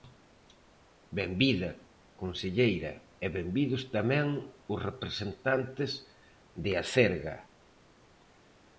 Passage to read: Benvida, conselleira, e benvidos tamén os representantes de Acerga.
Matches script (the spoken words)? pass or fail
pass